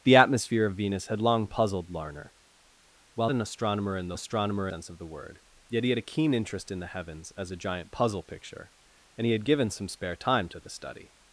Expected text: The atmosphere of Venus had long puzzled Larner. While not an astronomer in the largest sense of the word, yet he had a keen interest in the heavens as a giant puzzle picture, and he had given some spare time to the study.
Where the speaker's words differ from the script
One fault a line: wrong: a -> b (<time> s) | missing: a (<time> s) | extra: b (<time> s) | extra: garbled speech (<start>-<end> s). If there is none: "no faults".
missing: not (3.3 s)
wrong: largest -> astronomer (4.1 s)